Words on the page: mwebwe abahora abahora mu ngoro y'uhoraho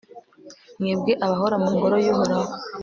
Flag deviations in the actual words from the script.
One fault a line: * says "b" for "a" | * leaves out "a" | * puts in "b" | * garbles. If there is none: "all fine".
* leaves out "abahora"